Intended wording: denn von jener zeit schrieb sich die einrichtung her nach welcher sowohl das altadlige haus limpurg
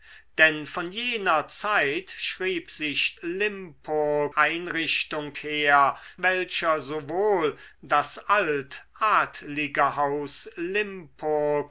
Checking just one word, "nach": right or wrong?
wrong